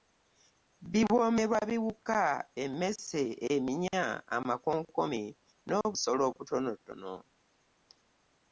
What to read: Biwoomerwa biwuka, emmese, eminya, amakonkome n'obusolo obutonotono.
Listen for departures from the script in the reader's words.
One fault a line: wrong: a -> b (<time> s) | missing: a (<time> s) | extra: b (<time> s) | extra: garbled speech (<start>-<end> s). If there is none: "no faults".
no faults